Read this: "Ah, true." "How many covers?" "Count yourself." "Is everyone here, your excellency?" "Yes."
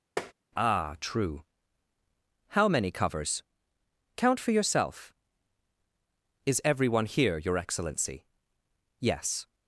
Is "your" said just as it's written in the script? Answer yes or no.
yes